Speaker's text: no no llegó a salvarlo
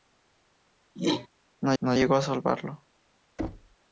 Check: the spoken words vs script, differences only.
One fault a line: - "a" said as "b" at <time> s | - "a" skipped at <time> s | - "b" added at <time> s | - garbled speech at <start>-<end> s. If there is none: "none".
none